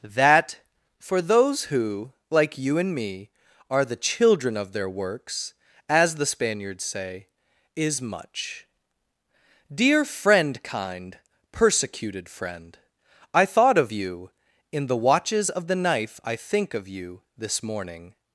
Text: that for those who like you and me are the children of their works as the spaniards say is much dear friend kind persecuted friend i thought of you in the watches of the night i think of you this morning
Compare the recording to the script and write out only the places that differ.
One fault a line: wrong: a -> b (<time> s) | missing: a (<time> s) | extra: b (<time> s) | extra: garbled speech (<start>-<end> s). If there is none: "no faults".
wrong: night -> knife (15.8 s)